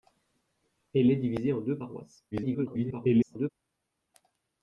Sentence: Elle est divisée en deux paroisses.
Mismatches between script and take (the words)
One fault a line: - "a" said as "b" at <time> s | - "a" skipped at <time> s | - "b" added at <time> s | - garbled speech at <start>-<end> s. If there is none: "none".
- garbled speech at 2.3-3.5 s